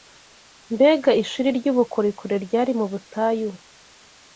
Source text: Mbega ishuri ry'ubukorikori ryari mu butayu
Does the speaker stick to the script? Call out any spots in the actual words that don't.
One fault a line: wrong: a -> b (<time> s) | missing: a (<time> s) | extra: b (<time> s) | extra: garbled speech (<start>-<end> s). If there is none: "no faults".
no faults